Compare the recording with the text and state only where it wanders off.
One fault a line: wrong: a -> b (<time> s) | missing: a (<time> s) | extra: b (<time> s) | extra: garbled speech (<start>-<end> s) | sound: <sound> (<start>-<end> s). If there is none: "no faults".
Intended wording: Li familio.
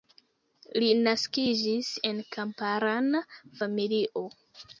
extra: naskiĝis en kamparana (1.1 s)